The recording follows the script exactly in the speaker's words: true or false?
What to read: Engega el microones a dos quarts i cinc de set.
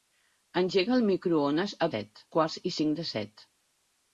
false